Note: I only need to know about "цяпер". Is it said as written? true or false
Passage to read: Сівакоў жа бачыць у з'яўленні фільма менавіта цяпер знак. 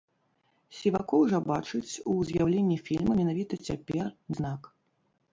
true